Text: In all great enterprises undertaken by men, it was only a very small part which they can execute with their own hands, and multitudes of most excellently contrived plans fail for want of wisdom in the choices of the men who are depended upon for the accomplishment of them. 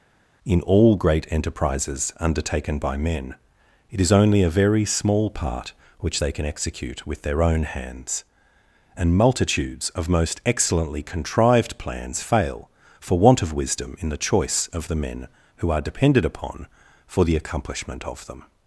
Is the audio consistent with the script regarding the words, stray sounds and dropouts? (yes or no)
no